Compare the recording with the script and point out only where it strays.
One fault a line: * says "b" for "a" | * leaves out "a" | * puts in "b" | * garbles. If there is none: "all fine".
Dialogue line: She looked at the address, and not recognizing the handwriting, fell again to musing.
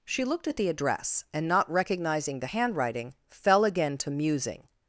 all fine